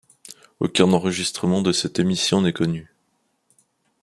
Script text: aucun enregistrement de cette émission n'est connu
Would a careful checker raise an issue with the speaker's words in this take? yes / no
no